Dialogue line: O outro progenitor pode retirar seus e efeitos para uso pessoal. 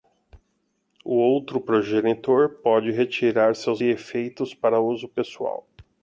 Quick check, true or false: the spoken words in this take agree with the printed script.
true